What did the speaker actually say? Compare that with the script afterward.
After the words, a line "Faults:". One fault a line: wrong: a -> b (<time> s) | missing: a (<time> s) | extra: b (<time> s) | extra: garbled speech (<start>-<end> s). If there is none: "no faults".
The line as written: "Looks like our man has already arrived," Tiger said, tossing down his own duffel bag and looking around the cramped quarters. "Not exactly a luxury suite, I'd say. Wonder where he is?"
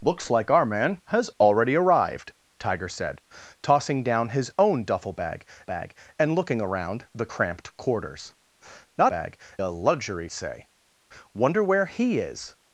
"Looks like our man has already arrived," Tiger said, tossing down his own duffel bag bag and looking around the cramped quarters. "Not bag a luxury say. Wonder where he is?"
Faults:
extra: bag (5.6 s)
wrong: exactly -> bag (9.1 s)
missing: suite I'd (10.3 s)